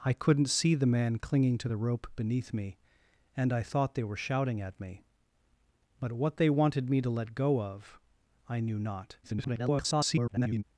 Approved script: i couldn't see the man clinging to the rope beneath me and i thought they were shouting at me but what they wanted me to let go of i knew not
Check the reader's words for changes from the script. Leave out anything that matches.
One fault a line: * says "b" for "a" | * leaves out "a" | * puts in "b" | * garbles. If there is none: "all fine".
* garbles